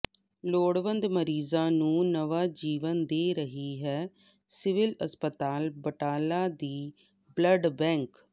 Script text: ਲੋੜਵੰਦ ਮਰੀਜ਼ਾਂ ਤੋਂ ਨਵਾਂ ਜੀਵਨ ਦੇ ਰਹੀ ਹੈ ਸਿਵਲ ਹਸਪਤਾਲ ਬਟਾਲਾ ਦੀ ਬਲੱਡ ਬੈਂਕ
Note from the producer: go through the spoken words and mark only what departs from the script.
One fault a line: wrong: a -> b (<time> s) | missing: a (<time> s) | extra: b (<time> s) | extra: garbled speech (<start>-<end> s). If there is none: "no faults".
wrong: ਤੋਂ -> ਨੂੰ (1.7 s)